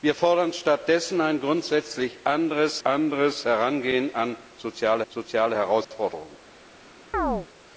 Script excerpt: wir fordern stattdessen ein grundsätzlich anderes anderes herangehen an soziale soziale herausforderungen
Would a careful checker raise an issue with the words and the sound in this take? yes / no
yes